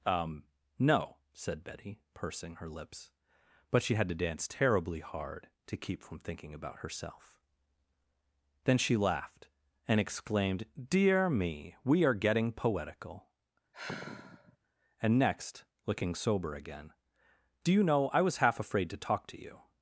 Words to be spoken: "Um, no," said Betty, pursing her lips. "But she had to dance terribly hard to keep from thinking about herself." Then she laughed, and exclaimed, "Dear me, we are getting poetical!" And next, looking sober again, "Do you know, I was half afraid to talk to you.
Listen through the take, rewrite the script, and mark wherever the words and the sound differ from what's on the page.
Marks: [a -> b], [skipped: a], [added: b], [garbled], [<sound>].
"Um, no," said Betty, pursing her lips. "But she had to dance terribly hard to keep from thinking about herself." Then she laughed, and exclaimed, "Dear me, we are getting poetical!" [sigh] And next, looking sober again, "Do you know, I was half afraid to talk to you.